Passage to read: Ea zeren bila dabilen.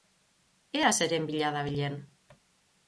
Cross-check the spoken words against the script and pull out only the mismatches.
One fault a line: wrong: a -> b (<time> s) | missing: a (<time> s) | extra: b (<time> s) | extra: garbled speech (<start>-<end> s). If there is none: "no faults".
no faults